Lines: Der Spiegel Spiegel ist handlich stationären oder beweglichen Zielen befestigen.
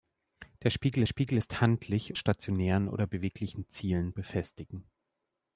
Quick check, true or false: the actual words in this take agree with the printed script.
true